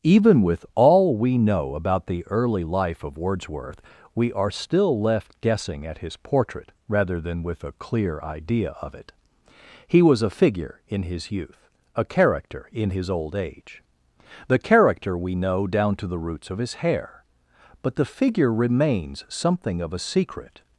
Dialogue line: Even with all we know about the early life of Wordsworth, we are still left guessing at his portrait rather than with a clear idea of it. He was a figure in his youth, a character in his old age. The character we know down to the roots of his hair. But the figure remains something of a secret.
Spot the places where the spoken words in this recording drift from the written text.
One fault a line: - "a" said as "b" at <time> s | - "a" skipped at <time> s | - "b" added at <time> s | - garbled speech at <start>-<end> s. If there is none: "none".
none